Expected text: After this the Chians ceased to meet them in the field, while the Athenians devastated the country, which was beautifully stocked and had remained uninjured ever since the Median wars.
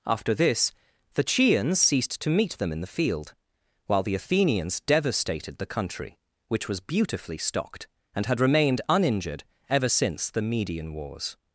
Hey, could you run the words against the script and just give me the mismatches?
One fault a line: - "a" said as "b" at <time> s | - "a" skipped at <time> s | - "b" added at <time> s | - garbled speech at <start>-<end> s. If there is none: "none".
none